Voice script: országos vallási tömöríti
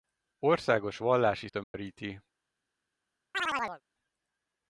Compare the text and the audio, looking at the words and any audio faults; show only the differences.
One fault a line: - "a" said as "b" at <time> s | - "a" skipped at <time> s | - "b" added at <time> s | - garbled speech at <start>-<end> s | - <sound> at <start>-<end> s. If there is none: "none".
- dropout at 1.6-1.7 s
- chirp at 3.3-3.8 s